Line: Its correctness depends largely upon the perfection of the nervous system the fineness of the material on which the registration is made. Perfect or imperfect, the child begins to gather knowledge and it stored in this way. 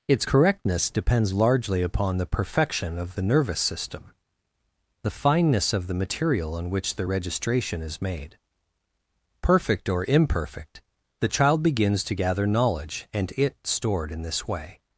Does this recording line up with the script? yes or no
yes